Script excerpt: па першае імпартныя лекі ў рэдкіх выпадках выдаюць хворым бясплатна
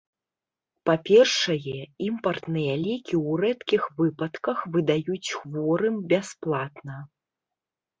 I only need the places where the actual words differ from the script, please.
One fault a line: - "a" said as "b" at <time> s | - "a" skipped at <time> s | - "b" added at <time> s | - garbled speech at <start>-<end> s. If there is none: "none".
none